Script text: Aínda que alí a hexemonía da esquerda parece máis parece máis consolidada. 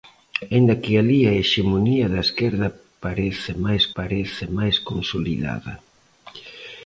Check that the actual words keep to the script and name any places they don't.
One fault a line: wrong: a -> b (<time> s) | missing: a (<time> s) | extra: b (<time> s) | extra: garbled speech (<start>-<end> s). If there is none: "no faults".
no faults